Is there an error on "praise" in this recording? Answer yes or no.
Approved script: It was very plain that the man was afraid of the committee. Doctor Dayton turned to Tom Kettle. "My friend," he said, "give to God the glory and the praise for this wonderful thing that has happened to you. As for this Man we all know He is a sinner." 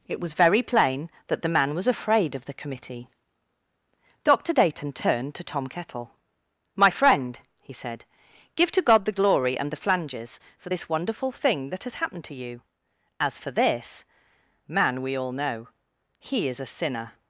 yes